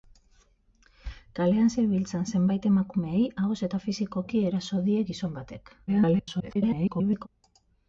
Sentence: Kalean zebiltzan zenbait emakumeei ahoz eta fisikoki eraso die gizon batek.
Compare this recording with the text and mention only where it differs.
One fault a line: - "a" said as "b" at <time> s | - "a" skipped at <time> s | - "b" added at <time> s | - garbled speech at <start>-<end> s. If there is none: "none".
- garbled speech at 5.9-7.3 s